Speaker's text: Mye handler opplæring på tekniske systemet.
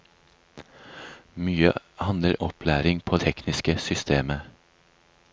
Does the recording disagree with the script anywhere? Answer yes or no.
no